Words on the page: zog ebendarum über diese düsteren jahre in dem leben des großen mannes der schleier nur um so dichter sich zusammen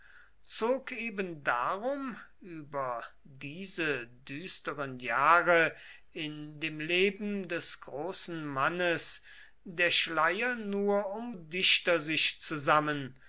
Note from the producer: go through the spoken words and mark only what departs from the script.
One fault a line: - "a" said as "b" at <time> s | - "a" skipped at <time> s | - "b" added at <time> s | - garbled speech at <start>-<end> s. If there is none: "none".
- "so" skipped at 11.3 s